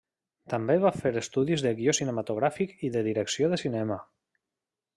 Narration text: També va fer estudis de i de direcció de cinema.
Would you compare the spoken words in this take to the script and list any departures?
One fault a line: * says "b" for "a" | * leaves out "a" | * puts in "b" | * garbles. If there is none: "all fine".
* puts in "guió cinematogràfic"